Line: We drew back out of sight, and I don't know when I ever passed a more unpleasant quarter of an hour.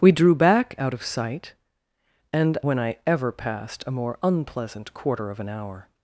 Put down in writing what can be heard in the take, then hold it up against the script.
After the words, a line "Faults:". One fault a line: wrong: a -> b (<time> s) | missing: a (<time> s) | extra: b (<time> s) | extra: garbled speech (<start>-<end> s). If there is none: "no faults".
We drew back out of sight, and when I ever passed a more unpleasant quarter of an hour.
Faults:
missing: I don't know (2.6 s)